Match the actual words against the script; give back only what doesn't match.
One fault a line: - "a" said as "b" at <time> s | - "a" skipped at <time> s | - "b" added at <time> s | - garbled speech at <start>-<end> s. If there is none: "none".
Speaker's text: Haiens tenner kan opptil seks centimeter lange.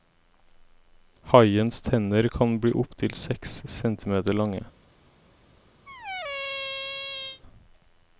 - "bli" added at 2.6 s